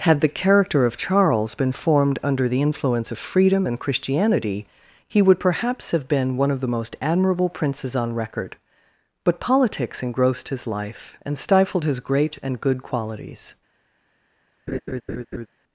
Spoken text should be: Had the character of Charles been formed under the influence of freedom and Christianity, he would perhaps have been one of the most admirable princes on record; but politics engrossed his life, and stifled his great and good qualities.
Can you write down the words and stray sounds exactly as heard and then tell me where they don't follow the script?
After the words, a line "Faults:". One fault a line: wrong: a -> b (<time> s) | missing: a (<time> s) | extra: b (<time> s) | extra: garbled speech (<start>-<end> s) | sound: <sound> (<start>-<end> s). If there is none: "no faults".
Had the character of Charles been formed under the influence of freedom and Christianity, he would perhaps have been one of the most admirable princes on record; but politics engrossed his life, and stifled his great and good qualities.
Faults:
sound: laugh (14.7-15.5 s)